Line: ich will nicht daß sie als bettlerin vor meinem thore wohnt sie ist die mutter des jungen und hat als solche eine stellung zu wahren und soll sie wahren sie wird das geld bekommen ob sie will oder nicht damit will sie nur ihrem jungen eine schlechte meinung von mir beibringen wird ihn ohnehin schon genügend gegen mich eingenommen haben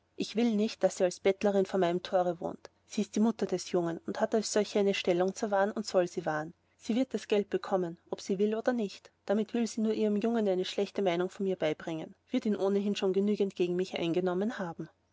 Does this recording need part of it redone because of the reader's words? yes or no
no